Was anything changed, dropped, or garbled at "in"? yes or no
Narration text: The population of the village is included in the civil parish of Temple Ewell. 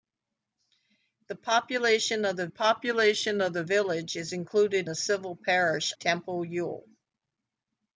yes